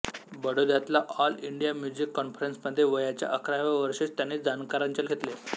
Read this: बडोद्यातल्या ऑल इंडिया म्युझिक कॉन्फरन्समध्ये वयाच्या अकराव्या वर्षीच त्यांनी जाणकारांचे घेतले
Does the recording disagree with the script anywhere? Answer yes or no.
no